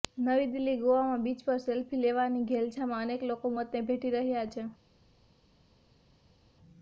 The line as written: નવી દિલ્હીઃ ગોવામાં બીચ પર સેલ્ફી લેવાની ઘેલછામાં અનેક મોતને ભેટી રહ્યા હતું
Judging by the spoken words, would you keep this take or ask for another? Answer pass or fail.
fail